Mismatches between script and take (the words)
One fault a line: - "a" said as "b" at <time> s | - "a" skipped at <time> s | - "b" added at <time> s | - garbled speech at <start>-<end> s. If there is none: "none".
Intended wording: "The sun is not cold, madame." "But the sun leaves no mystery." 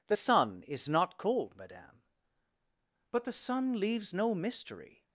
none